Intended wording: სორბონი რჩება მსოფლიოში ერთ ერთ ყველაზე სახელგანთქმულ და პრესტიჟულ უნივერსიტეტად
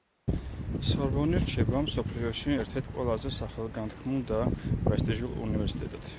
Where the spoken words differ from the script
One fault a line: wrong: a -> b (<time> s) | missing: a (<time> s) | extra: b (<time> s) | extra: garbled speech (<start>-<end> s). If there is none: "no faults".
no faults